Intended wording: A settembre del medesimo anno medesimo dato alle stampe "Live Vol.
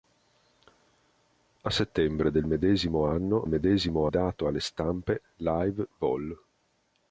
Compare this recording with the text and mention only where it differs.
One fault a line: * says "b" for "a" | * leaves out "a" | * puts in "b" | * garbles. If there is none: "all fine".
all fine